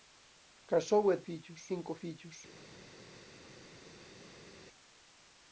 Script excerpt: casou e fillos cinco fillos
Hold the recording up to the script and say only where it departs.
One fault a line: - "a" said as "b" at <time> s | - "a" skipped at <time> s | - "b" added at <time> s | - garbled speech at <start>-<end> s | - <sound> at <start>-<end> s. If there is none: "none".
none